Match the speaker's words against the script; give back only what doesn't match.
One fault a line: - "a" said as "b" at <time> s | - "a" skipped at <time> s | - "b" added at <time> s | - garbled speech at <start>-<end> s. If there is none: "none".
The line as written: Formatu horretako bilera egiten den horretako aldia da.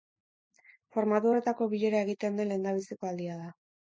- "horretako" said as "lehendabiziko" at 2.5 s